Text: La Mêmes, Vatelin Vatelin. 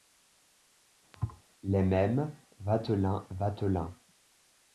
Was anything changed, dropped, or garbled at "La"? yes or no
yes